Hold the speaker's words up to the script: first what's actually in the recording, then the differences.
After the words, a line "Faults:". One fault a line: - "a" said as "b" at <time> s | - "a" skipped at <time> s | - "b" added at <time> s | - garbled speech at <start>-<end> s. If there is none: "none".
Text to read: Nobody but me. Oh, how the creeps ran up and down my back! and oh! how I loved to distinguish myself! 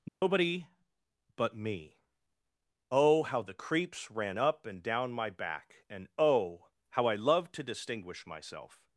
Nobody but me. Oh, how the creeps ran up and down my back! and oh! how I loved to distinguish myself!
Faults:
none